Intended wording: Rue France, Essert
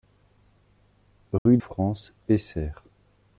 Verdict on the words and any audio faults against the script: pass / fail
fail